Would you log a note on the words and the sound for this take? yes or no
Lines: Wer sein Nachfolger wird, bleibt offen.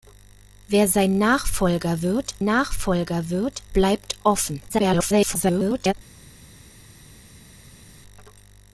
yes